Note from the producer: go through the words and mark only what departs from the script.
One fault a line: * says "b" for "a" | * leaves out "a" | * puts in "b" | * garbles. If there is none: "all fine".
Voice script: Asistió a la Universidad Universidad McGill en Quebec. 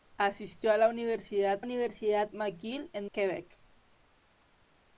all fine